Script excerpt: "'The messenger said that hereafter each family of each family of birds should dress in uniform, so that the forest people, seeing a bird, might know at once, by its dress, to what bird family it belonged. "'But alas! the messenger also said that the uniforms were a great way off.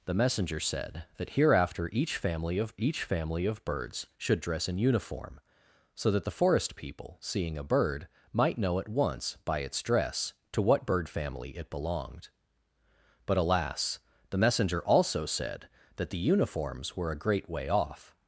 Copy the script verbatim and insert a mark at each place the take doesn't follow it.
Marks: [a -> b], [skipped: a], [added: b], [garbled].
"'The messenger said that hereafter each family of each family of birds should dress in uniform, so that the forest people, seeing a bird, might know at once, by its dress, to what bird family it belonged. "'But alas! the messenger also said that the uniforms were a great way off.